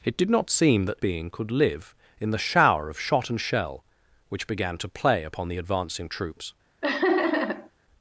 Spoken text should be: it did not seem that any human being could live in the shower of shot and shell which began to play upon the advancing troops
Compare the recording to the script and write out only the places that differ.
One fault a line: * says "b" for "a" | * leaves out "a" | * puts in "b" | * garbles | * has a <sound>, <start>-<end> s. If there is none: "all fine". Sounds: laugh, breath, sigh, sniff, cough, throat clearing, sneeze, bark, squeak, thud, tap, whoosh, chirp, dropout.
* leaves out "any human"
* has a laugh, 6.8-7.7 s